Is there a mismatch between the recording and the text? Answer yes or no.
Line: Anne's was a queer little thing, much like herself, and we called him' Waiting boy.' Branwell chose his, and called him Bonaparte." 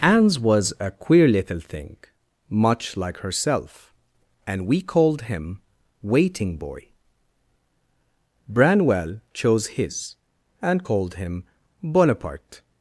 no